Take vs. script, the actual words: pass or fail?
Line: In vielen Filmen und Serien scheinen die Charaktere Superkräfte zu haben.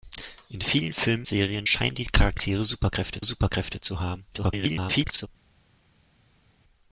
fail